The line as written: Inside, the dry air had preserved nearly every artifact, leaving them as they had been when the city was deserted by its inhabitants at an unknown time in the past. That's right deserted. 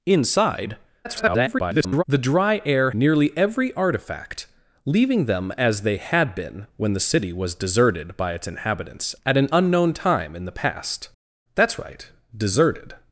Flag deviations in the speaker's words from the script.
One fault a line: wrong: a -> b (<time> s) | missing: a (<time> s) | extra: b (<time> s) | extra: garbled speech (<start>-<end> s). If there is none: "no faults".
extra: garbled speech (1.0-2.0 s)
missing: had preserved (2.9 s)